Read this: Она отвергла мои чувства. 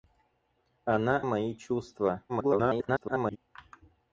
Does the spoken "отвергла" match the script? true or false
false